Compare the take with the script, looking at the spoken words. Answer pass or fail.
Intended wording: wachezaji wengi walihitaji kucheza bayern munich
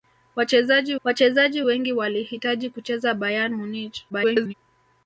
fail